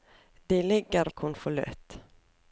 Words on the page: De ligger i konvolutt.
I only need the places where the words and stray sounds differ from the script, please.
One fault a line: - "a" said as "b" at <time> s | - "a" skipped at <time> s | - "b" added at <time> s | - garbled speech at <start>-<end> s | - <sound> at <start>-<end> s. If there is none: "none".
none